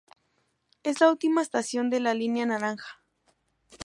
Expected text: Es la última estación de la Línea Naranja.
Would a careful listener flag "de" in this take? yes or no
no